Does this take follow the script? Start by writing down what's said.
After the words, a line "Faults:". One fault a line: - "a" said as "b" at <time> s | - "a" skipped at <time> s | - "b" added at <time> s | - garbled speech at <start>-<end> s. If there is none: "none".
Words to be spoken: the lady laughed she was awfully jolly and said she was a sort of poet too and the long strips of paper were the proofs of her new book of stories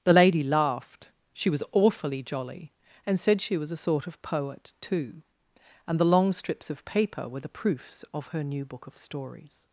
the lady laughed she was awfully jolly and said she was a sort of poet too and the long strips of paper were the proofs of her new book of stories
Faults:
none